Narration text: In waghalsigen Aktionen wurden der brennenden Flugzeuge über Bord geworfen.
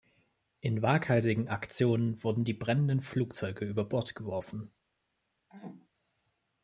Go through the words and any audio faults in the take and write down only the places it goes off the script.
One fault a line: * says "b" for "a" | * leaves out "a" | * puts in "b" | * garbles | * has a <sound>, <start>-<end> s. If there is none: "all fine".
* says "die" for "der"
* has a throat clearing, 5.5-5.9 s